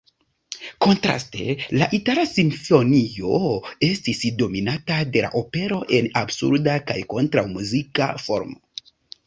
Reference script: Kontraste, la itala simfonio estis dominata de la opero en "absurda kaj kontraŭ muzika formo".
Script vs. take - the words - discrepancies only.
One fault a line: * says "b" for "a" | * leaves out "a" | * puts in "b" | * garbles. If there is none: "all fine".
all fine